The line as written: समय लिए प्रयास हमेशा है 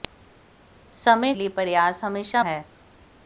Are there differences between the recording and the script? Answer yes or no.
no